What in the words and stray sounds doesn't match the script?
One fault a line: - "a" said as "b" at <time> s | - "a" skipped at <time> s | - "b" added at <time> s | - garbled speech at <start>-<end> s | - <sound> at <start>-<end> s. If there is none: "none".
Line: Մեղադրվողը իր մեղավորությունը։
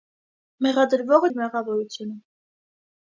none